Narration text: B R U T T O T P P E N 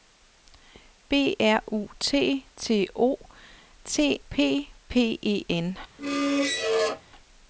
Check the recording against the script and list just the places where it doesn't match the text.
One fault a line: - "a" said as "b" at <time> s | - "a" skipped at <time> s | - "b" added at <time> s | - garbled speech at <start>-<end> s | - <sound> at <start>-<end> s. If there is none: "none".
- squeak at 6.0-7.0 s